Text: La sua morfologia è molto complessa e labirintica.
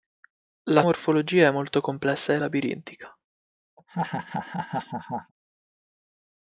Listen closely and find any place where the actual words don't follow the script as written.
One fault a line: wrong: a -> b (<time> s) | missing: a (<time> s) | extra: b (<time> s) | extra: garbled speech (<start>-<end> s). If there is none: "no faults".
missing: sua (0.8 s)